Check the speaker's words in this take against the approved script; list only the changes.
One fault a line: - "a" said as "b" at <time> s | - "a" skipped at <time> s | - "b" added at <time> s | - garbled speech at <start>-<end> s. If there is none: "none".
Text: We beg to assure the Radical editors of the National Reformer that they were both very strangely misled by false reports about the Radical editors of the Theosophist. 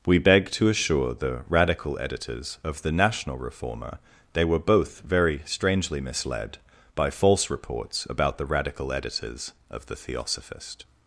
- "that" skipped at 4.0 s